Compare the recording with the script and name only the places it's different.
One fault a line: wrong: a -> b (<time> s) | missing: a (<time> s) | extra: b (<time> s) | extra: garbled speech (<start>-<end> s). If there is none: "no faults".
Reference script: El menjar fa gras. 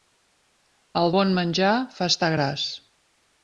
extra: bon (1.2 s)
extra: estar (2.1 s)